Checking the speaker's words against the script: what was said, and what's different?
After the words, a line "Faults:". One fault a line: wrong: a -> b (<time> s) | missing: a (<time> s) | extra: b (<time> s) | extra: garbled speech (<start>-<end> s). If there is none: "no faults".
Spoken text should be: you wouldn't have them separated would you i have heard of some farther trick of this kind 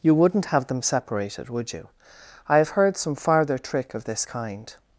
you wouldn't have them separated would you i have heard some farther trick of this kind
Faults:
missing: of (3.0 s)